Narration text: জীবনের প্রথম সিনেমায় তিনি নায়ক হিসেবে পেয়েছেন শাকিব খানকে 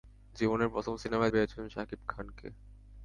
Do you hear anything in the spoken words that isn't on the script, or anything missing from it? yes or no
yes